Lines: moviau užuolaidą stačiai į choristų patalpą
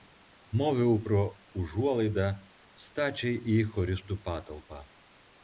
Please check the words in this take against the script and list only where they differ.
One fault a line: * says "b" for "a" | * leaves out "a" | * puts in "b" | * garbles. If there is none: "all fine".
* puts in "pro"